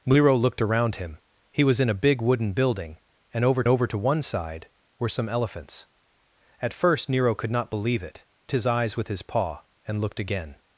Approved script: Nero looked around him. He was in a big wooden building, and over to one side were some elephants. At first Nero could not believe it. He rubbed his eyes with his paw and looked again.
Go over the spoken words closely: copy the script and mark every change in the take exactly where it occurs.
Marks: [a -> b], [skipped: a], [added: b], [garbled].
Nero looked around him. He was in a big wooden building, and over [added: over] to one side were some elephants. At first Nero could not believe it. [skipped: He rubbed] his eyes with his paw and looked again.